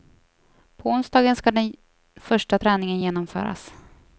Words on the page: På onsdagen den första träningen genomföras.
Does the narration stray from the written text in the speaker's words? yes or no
yes